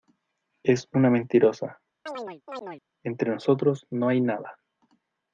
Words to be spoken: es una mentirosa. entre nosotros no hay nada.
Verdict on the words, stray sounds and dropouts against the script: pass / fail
fail